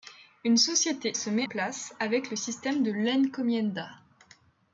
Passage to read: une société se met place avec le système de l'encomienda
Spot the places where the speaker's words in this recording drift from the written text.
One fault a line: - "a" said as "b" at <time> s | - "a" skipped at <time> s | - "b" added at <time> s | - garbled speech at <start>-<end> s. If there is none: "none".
none